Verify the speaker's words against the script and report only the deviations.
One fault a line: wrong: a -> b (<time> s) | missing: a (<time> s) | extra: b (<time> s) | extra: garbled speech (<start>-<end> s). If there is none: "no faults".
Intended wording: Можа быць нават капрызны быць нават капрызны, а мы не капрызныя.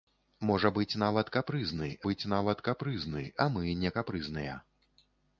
no faults